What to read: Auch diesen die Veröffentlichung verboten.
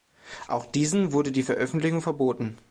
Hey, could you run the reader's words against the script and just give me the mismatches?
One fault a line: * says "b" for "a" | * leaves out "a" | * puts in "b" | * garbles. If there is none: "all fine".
* puts in "wurde"